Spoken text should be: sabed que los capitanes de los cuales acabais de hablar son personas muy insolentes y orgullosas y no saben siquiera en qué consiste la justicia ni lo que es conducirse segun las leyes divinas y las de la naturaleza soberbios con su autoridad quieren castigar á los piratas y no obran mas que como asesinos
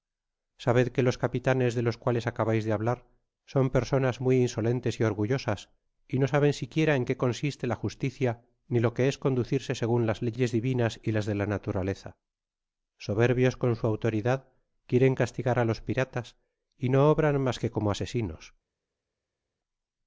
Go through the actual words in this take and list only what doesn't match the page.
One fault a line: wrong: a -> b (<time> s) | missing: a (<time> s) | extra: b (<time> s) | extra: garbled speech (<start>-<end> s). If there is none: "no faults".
no faults